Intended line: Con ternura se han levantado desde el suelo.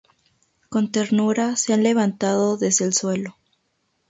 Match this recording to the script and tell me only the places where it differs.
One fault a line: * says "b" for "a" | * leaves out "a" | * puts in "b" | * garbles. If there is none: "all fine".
all fine